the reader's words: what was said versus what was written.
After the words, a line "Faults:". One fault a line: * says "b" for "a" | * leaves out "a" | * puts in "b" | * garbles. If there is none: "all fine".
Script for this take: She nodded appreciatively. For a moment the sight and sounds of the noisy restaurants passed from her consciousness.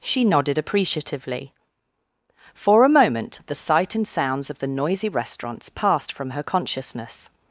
She nodded appreciatively. For a moment the sight and sounds of the noisy restaurants passed from her consciousness.
Faults:
all fine